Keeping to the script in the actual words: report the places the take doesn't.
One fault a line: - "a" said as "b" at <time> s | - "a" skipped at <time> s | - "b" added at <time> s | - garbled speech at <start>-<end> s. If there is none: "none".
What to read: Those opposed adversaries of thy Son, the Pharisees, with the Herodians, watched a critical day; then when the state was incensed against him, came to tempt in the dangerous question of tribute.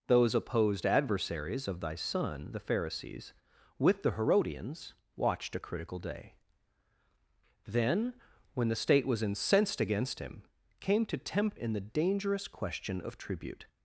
none